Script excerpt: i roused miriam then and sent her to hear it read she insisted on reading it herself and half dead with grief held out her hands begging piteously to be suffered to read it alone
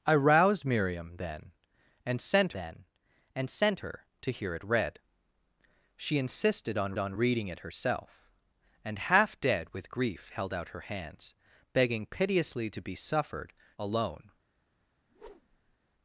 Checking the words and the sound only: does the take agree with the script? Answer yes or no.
no